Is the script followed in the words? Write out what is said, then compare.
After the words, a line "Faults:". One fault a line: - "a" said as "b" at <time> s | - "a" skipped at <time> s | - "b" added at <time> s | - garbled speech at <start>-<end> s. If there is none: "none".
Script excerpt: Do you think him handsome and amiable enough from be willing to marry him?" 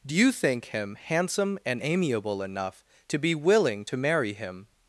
Do you think him handsome and amiable enough to be willing to marry him?"
Faults:
- "from" said as "to" at 3.1 s